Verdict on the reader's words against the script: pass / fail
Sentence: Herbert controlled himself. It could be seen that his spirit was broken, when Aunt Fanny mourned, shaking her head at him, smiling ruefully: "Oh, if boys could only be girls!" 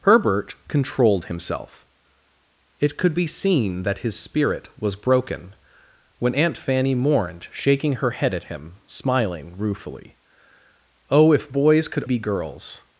fail